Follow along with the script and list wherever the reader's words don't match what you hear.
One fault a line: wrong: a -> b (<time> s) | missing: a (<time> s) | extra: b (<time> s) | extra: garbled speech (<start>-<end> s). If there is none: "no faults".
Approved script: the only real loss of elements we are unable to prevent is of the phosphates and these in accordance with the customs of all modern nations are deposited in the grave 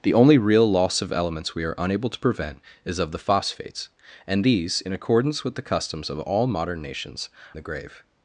missing: are deposited in (7.3 s)